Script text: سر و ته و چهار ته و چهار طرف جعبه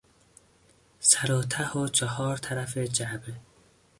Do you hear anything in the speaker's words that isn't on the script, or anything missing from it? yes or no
yes